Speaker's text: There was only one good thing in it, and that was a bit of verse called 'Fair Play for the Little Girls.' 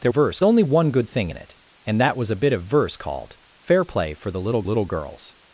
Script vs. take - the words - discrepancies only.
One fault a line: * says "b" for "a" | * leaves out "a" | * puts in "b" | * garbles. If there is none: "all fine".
* says "verse" for "was"
* puts in "Little"